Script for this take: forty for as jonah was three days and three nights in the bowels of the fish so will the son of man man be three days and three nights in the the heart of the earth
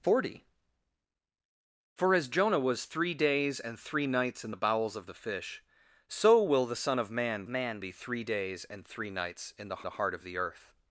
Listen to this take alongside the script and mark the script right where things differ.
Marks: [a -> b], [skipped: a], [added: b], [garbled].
forty for as jonah was three days and three nights in the bowels of the fish so will the son of man man be three days and three nights in the the heart of the earth